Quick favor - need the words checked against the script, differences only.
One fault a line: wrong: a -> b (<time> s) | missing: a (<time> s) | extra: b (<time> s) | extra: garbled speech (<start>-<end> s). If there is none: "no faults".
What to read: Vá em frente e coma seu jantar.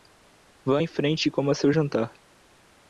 no faults